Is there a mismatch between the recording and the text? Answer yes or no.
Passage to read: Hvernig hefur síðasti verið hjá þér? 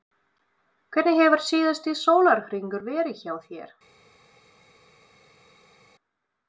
yes